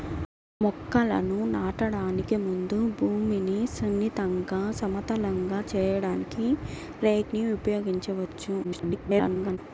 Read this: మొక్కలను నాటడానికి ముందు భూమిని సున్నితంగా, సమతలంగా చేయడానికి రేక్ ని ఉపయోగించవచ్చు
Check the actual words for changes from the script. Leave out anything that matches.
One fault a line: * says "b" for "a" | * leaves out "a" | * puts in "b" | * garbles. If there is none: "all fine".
* garbles